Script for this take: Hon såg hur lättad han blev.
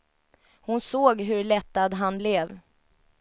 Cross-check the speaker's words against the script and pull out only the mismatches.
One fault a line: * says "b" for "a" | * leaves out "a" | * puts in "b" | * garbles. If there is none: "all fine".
all fine